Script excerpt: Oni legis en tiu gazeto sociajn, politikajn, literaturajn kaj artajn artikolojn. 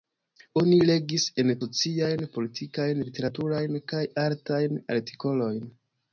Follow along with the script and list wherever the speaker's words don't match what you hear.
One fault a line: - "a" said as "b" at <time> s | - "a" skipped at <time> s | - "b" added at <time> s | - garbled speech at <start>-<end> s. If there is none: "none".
- "tiu gazeto" skipped at 1.5 s